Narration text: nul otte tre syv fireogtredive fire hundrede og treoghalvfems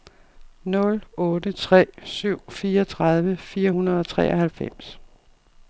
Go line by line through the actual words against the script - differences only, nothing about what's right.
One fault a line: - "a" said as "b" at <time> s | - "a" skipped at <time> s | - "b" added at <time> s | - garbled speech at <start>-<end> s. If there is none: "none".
none